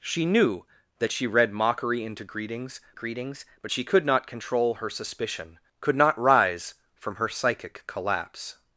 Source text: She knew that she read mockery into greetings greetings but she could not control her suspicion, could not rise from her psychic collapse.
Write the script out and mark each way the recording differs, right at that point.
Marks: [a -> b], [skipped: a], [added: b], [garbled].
She knew that she read mockery into greetings greetings but she could not control her suspicion, could not rise from her psychic collapse.